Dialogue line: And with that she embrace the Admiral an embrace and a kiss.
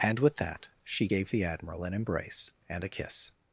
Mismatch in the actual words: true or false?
true